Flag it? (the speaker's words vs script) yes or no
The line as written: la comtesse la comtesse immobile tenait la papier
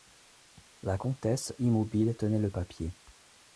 yes